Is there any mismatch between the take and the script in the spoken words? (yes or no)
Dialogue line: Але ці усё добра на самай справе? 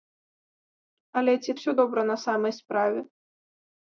no